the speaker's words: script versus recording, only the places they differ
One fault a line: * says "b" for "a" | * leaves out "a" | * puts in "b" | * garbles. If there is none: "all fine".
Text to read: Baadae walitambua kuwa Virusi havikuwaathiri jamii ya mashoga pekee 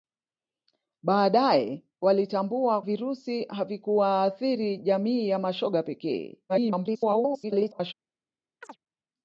* leaves out "kuwa"
* garbles